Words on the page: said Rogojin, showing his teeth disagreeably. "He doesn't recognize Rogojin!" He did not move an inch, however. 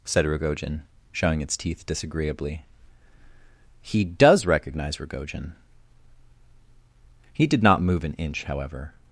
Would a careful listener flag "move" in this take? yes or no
no